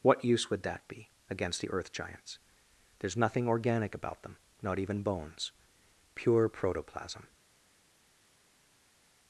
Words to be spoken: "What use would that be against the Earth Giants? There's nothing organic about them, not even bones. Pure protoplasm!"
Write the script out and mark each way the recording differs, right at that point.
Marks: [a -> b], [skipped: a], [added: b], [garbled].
"What use would that be against the Earth Giants? There's nothing organic about them, not even bones. Pure protoplasm!"